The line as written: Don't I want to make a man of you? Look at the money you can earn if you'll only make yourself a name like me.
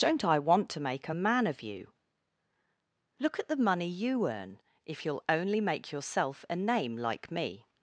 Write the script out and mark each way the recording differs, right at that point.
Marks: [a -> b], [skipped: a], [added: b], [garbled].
Don't I want to make a man of you? Look at the money you [skipped: can] earn if you'll only make yourself a name like me.